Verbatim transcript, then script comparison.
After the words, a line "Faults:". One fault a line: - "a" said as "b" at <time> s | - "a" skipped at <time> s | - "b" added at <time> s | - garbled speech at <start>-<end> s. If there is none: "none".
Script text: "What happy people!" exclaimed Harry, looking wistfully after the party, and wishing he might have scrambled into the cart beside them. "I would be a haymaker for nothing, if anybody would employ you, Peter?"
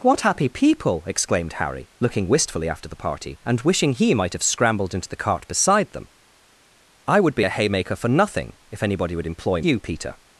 "What happy people!" exclaimed Harry, looking wistfully after the party, and wishing he might have scrambled into the cart beside them. "I would be a haymaker for nothing, if anybody would employ you, Peter?"
Faults:
none